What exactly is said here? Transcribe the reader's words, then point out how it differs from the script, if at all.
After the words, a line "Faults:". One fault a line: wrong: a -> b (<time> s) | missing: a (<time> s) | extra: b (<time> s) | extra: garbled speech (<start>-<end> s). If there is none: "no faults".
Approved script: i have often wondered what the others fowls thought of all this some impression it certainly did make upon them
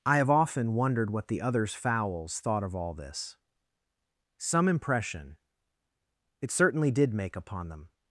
i have often wondered what the others fowls thought of all this some impression it certainly did make upon them
Faults:
no faults